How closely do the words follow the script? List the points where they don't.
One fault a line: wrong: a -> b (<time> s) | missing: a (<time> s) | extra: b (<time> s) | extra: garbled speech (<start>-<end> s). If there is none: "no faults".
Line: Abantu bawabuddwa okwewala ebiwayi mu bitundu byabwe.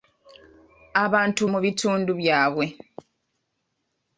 missing: bawabuddwa okwewala ebiwayi (1.4 s)